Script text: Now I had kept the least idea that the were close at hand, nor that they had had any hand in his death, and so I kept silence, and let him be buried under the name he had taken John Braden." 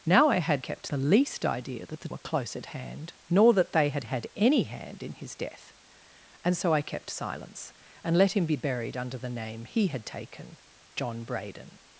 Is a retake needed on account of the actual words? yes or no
no